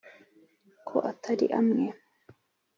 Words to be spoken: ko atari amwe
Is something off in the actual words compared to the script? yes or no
no